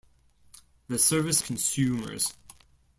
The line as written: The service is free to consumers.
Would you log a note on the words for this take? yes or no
yes